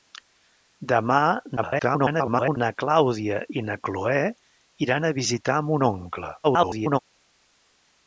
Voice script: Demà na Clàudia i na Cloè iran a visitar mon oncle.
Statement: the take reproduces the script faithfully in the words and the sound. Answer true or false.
false